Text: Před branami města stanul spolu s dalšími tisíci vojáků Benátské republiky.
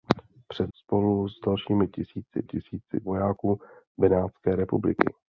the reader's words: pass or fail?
fail